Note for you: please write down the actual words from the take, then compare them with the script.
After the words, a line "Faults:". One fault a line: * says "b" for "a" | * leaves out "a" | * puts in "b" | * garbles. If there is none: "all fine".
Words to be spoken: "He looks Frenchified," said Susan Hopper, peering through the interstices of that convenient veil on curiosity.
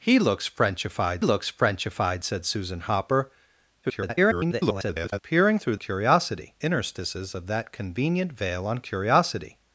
"He looks Frenchified looks Frenchified," said Susan Hopper, [garbled] peering through curiosity interstices of that convenient veil on curiosity.
Faults:
* puts in "looks Frenchified"
* garbles
* says "curiosity" for "the"